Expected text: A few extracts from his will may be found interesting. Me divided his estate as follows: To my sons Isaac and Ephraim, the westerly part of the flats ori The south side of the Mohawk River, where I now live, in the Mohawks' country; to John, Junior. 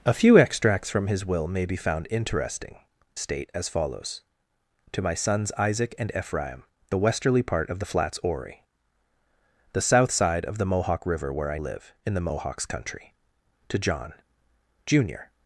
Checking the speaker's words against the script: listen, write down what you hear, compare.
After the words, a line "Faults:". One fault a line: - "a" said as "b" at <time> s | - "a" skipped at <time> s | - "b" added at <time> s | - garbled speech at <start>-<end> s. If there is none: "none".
A few extracts from his will may be found interesting. Estate as follows: To my sons Isaac and Ephraim, the westerly part of the flats ori The south side of the Mohawk River, where I live, in the Mohawks' country; to John, Junior.
Faults:
- "Me divided his" skipped at 2.8 s
- "now" skipped at 11.6 s